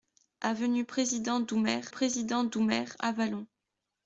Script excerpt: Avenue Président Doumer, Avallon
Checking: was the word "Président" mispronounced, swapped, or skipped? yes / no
no